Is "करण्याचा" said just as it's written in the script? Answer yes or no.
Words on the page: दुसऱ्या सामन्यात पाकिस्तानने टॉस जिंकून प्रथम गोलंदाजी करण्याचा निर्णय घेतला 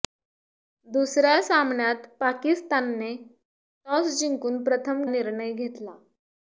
no